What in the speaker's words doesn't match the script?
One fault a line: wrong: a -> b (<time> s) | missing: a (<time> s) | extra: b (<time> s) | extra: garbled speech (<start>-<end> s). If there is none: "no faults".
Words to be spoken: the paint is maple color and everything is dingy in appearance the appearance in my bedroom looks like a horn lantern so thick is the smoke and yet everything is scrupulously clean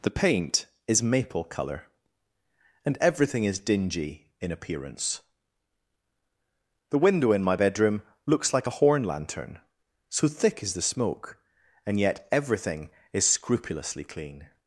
wrong: appearance -> window (7.0 s)